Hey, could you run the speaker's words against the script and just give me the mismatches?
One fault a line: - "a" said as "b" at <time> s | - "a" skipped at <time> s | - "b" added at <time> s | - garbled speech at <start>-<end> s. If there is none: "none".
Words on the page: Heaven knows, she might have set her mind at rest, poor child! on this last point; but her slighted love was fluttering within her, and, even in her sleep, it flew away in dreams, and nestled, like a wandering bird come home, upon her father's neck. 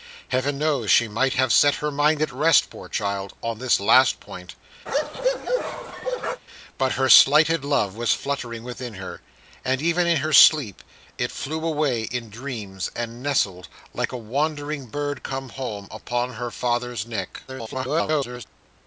- garbled speech at 17.5-18.4 s